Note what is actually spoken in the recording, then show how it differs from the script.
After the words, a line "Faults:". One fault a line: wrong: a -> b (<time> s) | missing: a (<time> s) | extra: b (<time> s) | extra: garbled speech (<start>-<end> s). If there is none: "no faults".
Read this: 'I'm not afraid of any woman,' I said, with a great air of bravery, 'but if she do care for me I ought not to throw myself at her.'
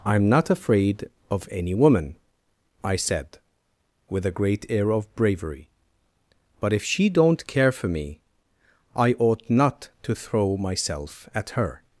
'I'm not afraid of any woman,' I said, with a great air of bravery, 'but if she don't care for me I ought not to throw myself at her.'
Faults:
wrong: do -> don't (7.1 s)